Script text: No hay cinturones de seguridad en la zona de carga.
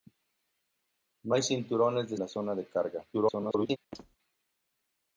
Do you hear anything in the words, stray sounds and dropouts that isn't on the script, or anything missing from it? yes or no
yes